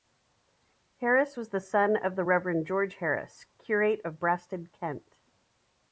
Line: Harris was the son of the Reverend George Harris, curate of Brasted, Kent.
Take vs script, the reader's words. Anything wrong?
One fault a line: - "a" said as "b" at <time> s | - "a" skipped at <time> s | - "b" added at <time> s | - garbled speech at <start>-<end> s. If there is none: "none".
none